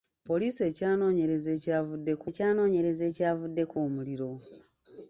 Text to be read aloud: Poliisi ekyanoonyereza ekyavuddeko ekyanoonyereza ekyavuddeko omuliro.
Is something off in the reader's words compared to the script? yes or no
no